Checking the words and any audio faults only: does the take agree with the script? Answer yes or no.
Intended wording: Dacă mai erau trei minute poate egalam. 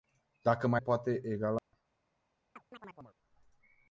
no